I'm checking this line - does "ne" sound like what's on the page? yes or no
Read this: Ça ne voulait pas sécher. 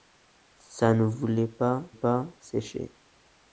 yes